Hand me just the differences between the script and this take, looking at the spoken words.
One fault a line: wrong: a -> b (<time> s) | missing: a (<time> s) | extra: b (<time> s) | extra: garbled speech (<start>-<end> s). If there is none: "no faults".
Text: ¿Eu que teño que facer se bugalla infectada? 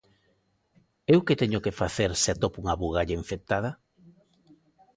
extra: atopo unha (2.3 s)